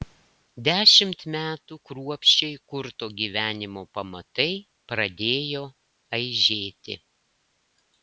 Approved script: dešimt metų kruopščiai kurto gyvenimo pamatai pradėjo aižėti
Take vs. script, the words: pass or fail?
pass